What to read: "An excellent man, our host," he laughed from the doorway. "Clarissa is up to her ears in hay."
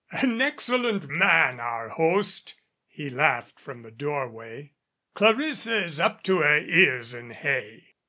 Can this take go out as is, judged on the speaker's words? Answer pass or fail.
pass